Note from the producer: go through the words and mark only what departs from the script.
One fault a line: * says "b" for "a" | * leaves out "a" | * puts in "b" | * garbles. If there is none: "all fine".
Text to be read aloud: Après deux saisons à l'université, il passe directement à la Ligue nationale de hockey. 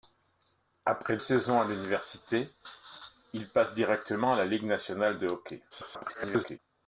* leaves out "deux"
* garbles